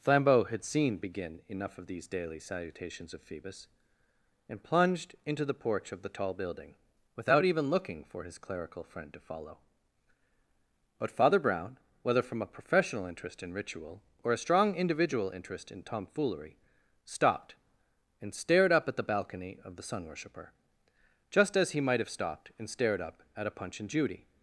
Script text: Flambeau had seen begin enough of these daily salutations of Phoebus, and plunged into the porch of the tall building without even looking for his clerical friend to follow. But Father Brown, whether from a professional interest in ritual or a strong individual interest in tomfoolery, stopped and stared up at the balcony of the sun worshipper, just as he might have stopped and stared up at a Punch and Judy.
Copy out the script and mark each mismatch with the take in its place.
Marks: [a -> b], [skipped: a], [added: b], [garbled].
Flambeau had seen begin enough of these daily salutations of Phoebus, and plunged into the porch of the tall building without even looking for his clerical friend to follow. But Father Brown, whether from a professional interest in ritual or a strong individual interest in tomfoolery, stopped and stared up at the balcony of the sun worshipper, just as he might have stopped and stared up at a Punch and Judy.